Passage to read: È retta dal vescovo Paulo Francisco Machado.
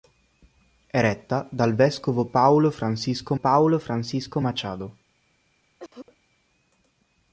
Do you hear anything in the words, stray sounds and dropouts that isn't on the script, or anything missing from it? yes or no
yes